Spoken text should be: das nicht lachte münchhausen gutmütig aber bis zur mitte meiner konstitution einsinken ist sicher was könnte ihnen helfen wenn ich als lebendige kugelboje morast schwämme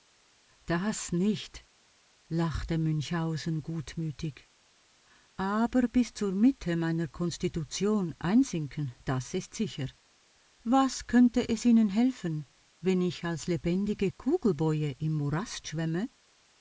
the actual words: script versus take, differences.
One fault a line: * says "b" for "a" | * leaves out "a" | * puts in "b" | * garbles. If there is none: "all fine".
* puts in "das"
* puts in "es"
* puts in "im"